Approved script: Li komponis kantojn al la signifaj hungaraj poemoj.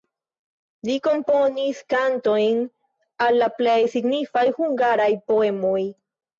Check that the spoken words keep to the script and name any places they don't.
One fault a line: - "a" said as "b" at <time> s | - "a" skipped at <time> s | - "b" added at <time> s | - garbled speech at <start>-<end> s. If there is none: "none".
- "plej" added at 3.6 s